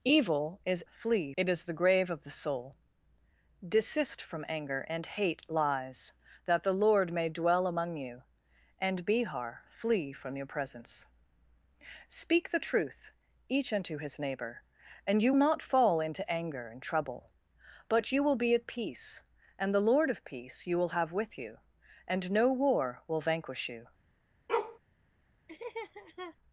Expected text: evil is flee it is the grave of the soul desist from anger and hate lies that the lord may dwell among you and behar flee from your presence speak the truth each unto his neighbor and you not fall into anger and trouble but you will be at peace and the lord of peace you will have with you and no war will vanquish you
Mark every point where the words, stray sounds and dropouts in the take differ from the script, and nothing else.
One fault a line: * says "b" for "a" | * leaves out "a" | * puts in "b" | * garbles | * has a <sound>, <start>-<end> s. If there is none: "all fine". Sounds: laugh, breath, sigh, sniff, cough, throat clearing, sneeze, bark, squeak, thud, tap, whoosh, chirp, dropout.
* has a bark, 24.5-24.8 s
* has a laugh, 25.5-26.4 s